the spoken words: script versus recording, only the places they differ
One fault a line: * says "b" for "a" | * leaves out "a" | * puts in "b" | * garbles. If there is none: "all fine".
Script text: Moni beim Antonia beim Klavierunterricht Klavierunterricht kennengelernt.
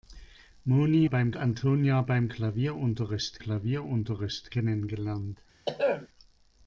all fine